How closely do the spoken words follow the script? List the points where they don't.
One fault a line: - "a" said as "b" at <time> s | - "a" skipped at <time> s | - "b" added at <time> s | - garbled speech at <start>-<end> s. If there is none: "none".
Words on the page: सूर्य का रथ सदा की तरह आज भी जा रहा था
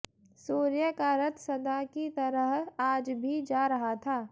none